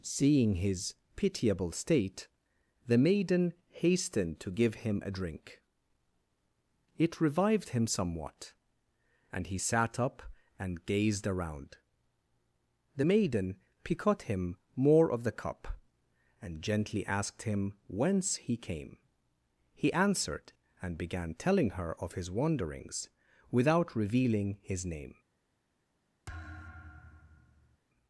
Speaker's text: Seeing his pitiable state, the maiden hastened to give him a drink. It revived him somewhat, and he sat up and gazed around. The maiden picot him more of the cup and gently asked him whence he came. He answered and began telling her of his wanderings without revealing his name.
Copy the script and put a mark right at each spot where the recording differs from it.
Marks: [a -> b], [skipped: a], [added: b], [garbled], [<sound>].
Seeing his pitiable state, the maiden hastened to give him a drink. It revived him somewhat, and he sat up and gazed around. The maiden picot him more of the cup and gently asked him whence he came. He answered and began telling her of his wanderings without revealing his name. [thud]